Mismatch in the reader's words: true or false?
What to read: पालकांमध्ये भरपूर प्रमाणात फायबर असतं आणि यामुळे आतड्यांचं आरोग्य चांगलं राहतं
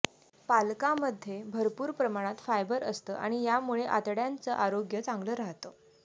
false